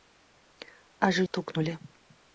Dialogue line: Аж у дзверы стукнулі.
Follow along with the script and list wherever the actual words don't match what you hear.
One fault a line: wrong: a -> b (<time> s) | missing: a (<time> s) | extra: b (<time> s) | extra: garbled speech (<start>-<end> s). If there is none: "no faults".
missing: дзверы (1.3 s)